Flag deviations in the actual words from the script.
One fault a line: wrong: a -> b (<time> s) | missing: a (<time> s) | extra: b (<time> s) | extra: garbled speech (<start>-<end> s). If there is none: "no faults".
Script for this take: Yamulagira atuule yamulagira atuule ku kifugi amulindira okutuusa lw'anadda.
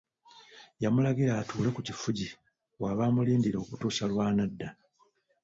missing: yamulagira atuule (1.7 s)
extra: w'aba (2.8 s)